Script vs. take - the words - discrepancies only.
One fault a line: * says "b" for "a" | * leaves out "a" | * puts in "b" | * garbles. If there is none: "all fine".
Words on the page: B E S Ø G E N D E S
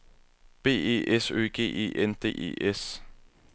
all fine